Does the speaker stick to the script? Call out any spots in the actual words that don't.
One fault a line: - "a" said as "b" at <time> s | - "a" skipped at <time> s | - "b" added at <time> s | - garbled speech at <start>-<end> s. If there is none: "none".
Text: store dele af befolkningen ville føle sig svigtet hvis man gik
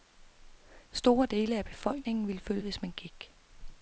- "sig svigtet" skipped at 2.6 s